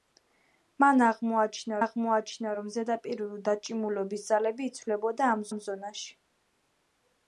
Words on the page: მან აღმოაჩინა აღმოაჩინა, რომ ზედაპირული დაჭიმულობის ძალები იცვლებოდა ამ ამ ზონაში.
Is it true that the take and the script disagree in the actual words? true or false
false